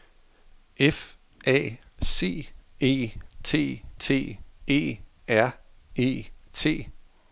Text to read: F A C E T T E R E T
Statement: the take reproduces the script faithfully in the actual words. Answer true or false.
true